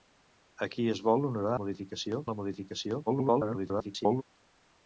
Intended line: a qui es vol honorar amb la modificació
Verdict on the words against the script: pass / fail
fail